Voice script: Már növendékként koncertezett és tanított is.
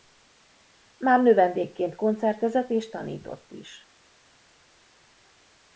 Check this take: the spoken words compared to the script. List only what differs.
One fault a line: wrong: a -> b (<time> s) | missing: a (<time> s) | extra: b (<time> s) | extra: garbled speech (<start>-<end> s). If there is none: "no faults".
no faults